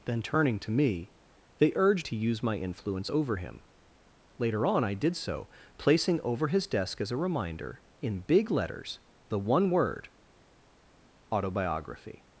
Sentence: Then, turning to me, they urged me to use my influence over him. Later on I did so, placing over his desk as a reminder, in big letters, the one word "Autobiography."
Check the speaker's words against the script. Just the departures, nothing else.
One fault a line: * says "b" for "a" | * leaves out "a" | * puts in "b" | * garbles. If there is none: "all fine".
* leaves out "me"